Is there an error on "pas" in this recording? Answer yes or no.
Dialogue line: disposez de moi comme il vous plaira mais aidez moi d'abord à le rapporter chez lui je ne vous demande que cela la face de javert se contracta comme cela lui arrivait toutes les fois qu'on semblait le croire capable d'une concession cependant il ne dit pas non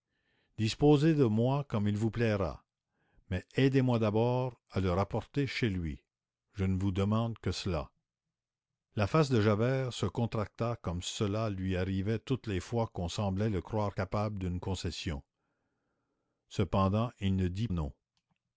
yes